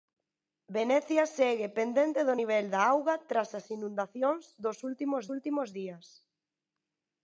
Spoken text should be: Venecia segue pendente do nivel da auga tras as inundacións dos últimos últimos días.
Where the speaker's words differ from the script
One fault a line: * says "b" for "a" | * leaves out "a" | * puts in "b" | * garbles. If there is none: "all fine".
all fine